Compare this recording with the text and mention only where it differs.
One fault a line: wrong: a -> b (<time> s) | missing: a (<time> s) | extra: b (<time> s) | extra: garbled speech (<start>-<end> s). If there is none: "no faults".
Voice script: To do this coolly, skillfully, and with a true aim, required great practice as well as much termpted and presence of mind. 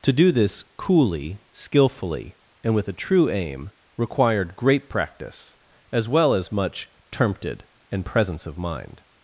no faults